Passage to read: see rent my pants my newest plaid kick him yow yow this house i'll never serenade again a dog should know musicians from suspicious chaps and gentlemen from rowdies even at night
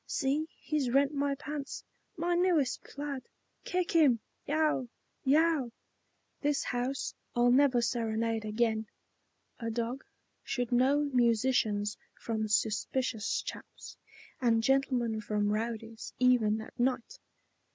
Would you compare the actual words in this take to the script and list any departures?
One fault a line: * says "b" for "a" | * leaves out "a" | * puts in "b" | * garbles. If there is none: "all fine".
* puts in "he's"